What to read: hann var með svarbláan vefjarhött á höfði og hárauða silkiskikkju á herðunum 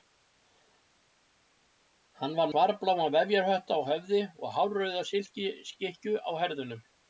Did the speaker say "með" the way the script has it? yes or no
no